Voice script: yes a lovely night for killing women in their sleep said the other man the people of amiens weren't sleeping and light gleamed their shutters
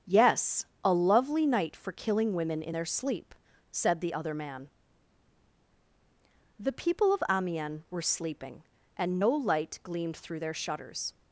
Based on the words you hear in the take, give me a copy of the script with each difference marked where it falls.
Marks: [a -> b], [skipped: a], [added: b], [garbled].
yes a lovely night for killing women in their sleep said the other man the people of amiens [weren't -> were] sleeping and [added: no] light gleamed [added: through] their shutters